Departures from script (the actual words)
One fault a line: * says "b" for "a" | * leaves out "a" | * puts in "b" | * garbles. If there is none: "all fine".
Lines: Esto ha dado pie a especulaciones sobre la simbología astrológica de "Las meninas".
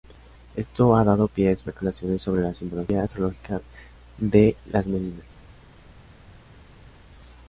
all fine